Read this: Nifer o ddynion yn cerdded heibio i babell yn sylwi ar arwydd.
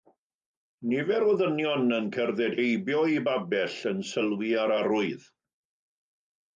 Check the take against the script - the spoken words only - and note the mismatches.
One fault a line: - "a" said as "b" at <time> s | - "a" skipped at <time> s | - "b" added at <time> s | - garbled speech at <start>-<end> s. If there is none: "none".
none